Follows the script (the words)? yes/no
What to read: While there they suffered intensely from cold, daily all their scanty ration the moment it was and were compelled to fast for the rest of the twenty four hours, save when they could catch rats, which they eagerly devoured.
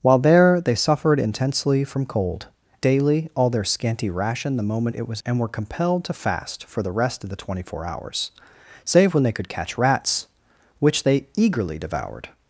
yes